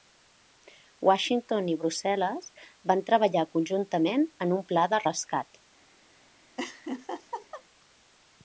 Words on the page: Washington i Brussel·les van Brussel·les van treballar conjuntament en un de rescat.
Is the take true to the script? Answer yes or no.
no